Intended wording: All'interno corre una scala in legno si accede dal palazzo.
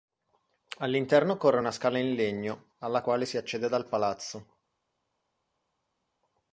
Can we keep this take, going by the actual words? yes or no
no